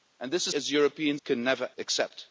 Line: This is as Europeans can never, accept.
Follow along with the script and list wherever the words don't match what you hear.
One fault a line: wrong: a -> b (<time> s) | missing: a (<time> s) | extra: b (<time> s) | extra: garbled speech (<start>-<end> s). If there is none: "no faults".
no faults